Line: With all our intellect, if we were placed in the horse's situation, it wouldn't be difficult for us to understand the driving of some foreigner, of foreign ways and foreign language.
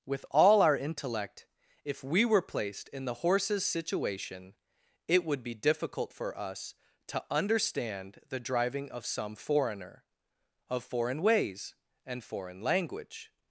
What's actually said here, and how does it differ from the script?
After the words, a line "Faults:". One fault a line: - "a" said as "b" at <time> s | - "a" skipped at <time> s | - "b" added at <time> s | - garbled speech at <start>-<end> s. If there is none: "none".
With all our intellect, if we were placed in the horse's situation, it would be difficult for us to understand the driving of some foreigner, of foreign ways and foreign language.
Faults:
- "wouldn't" said as "would" at 5.2 s